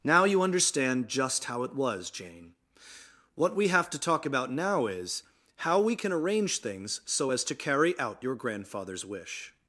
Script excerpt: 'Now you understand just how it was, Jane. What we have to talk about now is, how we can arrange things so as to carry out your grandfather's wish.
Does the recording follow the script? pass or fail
pass